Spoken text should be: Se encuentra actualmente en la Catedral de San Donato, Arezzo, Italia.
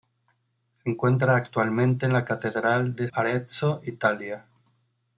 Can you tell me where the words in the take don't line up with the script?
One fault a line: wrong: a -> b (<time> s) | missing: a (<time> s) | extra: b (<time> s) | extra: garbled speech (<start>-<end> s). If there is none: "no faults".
missing: San Donato (3.1 s)